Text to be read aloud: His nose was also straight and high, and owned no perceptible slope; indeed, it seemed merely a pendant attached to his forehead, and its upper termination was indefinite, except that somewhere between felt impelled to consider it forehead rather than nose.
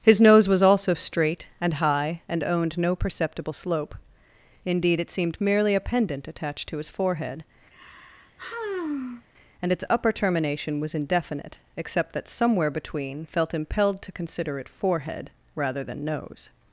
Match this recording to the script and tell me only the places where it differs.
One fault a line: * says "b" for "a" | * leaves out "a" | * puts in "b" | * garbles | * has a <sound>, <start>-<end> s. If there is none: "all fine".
* has a sigh, 7.7-9.3 s